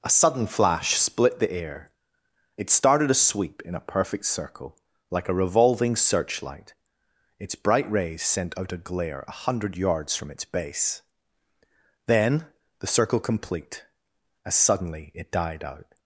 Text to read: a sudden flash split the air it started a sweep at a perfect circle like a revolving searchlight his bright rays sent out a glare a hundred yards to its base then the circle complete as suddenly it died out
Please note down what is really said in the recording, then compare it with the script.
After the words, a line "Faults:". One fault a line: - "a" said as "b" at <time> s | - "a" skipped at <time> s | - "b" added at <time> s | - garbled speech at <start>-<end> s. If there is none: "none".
a sudden flash split the air it started a sweep in a perfect circle like a revolving searchlight its bright rays sent out a glare a hundred yards from its base then the circle complete as suddenly it died out
Faults:
- "at" said as "in" at 3.6 s
- "his" said as "its" at 7.4 s
- "to" said as "from" at 10.2 s